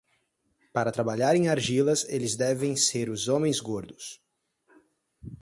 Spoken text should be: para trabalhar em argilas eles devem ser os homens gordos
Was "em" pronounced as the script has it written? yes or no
yes